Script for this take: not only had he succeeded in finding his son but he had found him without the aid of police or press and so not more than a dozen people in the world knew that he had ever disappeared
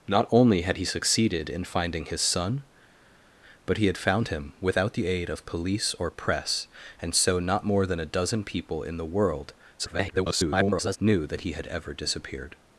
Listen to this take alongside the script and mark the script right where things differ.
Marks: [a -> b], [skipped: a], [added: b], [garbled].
not only had he succeeded in finding his son but he had found him without the aid of police or press and so not more than a dozen people in the world [garbled] knew that he had ever disappeared